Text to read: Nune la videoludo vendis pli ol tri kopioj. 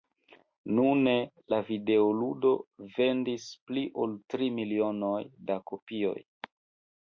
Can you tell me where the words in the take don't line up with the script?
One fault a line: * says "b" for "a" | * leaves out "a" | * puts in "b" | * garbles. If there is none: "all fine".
* puts in "milionoj da"